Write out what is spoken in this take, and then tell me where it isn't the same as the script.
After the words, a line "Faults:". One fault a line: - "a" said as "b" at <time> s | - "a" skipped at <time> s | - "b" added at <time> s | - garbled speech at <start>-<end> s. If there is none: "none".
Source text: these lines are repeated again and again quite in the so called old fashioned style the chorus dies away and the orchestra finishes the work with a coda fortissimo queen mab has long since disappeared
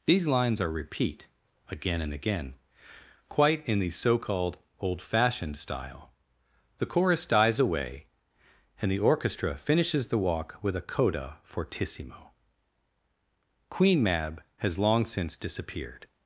these lines are repeat again and again quite in the so called old fashioned style the chorus dies away and the orchestra finishes the walk with a coda fortissimo queen mab has long since disappeared
Faults:
- "repeated" said as "repeat" at 0.7 s
- "work" said as "walk" at 10.2 s